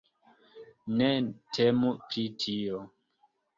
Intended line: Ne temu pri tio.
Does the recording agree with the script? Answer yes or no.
yes